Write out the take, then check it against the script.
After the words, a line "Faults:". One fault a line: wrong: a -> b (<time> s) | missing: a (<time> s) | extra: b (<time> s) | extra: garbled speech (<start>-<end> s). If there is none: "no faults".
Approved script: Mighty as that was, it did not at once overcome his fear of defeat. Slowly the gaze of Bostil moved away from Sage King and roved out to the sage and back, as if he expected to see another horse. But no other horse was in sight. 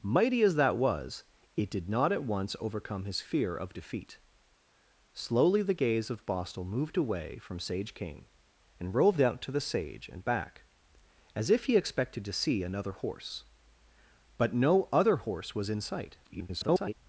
Mighty as that was, it did not at once overcome his fear of defeat. Slowly the gaze of Bostil moved away from Sage King and roved out to the sage and back, as if he expected to see another horse. But no other horse was in sight. [garbled]
Faults:
extra: garbled speech (16.2-16.9 s)